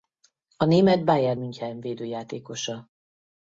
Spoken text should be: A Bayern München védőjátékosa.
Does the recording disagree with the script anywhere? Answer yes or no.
yes